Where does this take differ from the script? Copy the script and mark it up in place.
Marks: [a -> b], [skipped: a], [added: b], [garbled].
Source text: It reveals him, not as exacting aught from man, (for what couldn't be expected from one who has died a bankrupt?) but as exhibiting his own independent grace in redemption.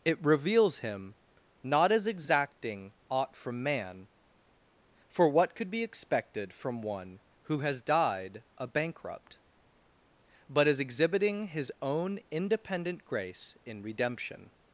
It reveals him, not as exacting aught from man, (for what [couldn't -> could] be expected from one who has died a bankrupt?) but as exhibiting his own independent grace in redemption.